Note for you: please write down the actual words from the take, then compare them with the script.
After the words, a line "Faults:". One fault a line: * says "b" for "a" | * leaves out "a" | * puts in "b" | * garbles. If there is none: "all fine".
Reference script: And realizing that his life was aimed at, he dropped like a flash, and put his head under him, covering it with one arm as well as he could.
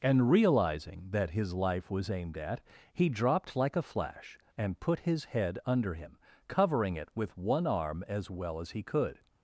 And realizing that his life was aimed at, he dropped like a flash, and put his head under him, covering it with one arm as well as he could.
Faults:
all fine